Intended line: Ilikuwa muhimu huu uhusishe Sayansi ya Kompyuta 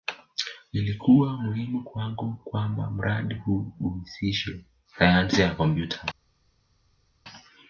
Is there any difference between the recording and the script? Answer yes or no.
yes